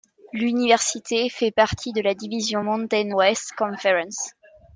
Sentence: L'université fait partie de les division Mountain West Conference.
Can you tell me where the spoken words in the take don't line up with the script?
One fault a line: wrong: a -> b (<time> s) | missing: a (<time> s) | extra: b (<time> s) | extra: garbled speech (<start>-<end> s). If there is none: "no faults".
wrong: les -> la (2.0 s)